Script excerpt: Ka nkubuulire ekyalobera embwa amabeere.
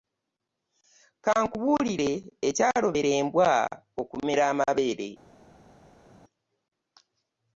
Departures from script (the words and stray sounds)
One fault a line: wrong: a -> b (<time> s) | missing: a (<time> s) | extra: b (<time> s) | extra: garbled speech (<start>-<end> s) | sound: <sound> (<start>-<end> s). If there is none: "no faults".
extra: okumera (4.0 s)